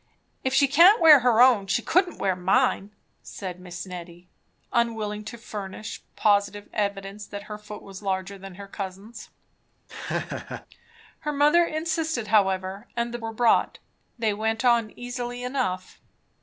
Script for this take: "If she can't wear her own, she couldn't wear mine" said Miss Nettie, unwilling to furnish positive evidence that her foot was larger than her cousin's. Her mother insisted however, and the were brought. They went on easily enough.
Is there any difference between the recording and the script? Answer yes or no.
no